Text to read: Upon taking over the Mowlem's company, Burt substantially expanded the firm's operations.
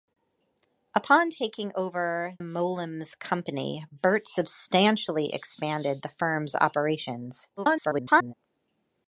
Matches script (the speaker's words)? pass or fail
fail